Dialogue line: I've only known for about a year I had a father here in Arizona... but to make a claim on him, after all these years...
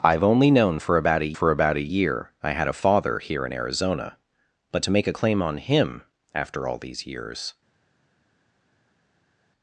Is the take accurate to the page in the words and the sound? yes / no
no